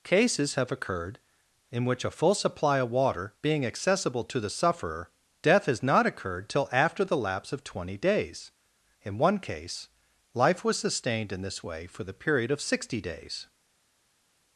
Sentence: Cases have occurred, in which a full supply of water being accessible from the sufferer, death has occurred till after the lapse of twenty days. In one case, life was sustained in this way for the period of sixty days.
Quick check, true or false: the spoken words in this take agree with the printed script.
false